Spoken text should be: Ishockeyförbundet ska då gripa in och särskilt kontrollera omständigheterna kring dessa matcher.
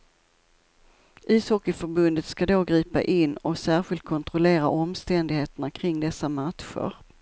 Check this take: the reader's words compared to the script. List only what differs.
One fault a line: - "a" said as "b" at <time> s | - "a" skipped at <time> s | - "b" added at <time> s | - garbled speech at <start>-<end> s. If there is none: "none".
none